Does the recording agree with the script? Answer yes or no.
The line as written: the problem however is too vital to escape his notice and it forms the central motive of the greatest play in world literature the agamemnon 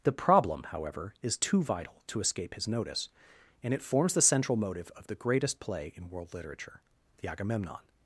yes